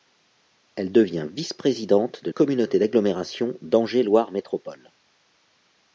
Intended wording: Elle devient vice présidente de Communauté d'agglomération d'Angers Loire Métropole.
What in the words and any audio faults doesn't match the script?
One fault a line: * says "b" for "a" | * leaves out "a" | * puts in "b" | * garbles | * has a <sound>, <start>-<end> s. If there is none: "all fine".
all fine